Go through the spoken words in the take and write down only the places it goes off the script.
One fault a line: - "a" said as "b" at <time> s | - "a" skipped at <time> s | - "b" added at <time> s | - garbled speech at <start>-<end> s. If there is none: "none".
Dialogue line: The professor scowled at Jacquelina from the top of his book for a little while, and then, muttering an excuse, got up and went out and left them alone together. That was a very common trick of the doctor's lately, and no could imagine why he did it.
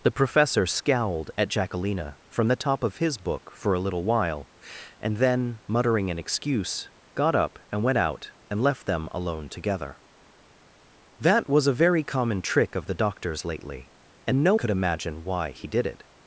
none